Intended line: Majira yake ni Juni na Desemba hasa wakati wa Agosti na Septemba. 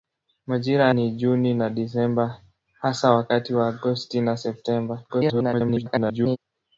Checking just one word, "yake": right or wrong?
wrong